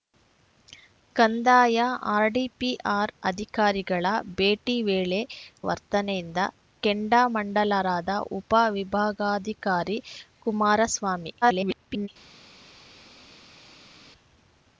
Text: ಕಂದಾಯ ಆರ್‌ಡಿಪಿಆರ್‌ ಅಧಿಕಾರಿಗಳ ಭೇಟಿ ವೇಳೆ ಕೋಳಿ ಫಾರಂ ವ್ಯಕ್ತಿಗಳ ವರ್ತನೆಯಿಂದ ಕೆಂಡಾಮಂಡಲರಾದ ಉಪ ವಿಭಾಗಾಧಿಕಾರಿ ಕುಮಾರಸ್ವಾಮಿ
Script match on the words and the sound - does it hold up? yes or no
no